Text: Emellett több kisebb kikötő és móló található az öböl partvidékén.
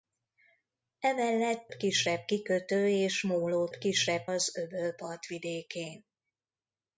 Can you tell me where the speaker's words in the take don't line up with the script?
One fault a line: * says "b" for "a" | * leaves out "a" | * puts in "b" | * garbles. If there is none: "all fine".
* leaves out "több"
* says "kisebb" for "található"